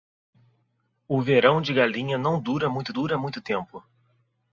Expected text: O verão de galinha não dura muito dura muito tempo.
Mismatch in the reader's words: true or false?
false